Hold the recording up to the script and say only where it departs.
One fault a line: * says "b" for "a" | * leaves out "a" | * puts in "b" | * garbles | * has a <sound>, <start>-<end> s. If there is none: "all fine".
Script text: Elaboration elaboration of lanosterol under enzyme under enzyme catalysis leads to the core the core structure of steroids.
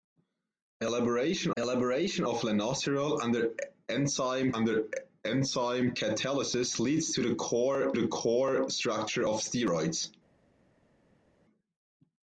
all fine